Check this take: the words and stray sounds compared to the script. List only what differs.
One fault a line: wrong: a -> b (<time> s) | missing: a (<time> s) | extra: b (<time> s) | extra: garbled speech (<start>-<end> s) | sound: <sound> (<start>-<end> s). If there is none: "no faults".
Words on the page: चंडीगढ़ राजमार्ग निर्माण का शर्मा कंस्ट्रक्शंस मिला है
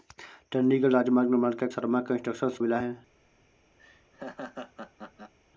sound: laugh (3.8-5.3 s)